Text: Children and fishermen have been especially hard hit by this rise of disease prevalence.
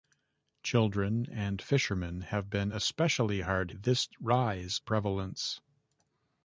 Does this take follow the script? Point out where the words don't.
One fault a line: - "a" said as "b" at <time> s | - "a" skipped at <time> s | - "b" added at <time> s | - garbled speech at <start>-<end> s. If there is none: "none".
- "hit by" skipped at 3.7 s
- "of disease" skipped at 4.8 s